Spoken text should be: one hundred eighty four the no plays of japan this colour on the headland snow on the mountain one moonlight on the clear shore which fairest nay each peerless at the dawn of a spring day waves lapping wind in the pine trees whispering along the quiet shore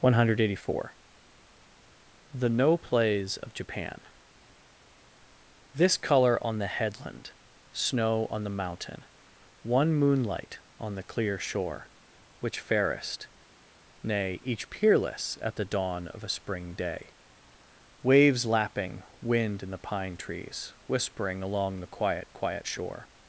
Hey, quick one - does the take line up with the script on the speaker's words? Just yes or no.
no